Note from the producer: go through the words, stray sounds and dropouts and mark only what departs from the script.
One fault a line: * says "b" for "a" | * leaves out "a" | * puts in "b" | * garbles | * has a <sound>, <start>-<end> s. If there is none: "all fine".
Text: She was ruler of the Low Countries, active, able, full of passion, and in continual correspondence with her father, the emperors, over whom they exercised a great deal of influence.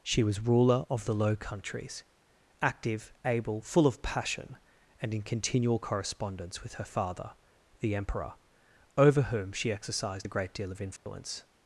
* says "emperor" for "emperors"
* says "she" for "they"
* has a dropout, 11.0-11.1 s